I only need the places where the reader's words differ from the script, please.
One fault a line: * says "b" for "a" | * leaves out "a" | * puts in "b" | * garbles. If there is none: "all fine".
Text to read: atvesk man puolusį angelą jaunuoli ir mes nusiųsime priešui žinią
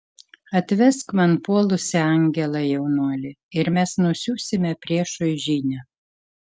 all fine